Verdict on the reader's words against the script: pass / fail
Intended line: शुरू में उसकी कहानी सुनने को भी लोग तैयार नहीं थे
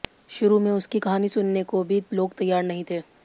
pass